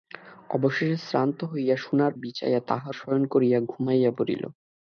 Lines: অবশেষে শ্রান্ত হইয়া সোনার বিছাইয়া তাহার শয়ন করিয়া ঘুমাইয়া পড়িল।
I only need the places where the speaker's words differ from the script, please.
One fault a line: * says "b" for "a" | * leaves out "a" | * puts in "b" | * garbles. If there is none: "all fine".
all fine